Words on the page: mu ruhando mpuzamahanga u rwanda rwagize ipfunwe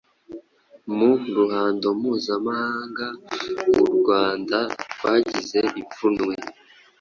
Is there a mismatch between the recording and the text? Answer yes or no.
no